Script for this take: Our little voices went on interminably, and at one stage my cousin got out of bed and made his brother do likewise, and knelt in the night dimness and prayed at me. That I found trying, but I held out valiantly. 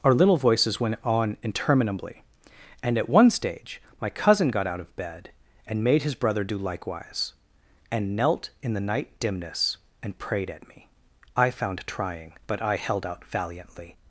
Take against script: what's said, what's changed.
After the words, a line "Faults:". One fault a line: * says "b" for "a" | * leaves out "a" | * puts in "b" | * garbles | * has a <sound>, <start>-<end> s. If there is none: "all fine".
Our little voices went on interminably, and at one stage my cousin got out of bed and made his brother do likewise, and knelt in the night dimness and prayed at me. I found trying, but I held out valiantly.
Faults:
* leaves out "That"